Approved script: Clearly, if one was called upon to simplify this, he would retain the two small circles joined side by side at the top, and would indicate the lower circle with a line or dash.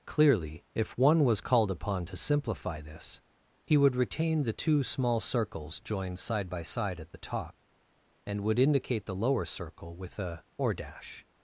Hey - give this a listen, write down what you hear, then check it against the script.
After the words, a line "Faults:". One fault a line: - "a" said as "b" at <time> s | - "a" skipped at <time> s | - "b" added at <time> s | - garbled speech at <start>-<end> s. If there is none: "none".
Clearly, if one was called upon to simplify this, he would retain the two small circles joined side by side at the top, and would indicate the lower circle with a or dash.
Faults:
- "line" skipped at 10.5 s